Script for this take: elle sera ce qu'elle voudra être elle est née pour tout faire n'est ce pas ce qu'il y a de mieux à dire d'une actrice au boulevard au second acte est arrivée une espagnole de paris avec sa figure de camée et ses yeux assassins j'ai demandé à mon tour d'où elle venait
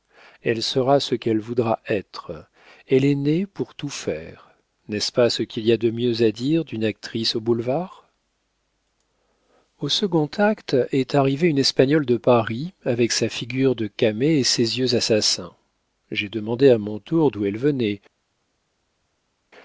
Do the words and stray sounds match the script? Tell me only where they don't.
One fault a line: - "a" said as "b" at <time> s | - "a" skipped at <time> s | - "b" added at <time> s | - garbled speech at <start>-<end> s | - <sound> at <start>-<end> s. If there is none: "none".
none